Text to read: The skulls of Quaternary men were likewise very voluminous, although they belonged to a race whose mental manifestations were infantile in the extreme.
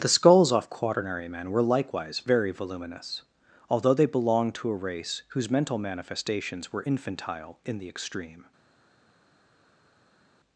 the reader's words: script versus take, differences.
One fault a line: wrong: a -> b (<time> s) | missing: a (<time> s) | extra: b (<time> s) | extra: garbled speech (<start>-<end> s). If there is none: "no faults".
wrong: of -> off (0.5 s)